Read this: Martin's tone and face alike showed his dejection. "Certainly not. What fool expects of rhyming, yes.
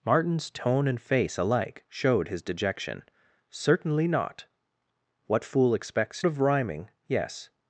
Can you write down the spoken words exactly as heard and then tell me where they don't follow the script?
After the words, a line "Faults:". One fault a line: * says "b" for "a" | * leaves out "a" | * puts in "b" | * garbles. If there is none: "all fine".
Martin's tone and face alike showed his dejection. "Certainly not. What fool expects of rhyming, yes.
Faults:
all fine